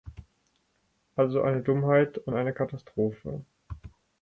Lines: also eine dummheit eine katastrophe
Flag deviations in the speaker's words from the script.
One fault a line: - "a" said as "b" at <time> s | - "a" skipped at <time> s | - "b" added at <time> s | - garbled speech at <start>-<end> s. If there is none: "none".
- "und" added at 2.2 s